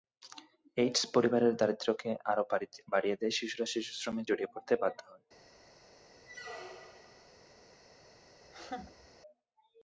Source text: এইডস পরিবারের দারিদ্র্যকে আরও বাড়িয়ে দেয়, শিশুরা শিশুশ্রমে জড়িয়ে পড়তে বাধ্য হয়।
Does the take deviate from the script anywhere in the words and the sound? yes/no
yes